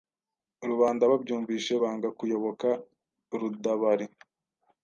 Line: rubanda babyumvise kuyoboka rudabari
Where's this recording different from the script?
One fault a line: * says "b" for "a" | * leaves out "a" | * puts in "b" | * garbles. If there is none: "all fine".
* puts in "banga"